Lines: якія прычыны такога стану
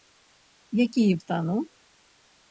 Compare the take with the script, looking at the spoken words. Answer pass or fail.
fail